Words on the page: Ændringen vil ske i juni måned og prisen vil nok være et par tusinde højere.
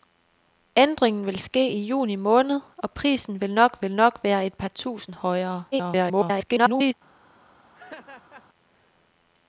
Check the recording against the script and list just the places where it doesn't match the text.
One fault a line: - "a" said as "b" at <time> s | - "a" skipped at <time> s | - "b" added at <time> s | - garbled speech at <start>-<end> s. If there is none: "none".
- "vil nok" added at 3.8 s
- garbled speech at 5.7-6.9 s